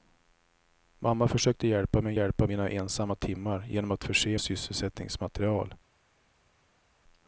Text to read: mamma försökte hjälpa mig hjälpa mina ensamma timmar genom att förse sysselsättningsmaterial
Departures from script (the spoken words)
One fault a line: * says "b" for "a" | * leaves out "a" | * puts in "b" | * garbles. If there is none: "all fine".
all fine